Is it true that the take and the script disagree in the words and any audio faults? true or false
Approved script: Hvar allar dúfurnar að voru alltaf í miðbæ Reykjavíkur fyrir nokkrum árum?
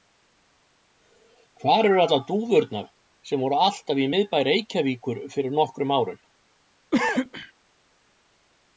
true